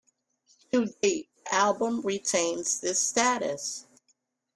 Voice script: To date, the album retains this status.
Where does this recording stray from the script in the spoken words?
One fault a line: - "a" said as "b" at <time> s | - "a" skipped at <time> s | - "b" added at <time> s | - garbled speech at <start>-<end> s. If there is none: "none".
none